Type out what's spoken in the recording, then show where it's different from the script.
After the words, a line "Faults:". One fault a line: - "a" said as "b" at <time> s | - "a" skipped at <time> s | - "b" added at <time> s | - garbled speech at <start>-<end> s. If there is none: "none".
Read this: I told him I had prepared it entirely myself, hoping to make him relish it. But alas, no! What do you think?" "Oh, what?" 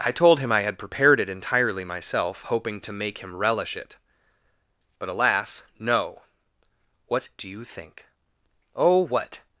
I told him I had prepared it entirely myself, hoping to make him relish it. But alas, no! What do you think?" "Oh, what?"
Faults:
none